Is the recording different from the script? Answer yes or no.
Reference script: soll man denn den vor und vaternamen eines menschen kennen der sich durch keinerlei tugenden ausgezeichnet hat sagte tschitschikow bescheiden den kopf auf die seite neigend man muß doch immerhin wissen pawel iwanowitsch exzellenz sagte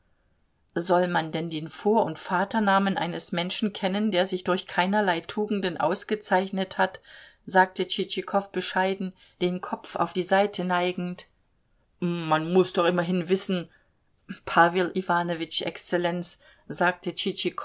no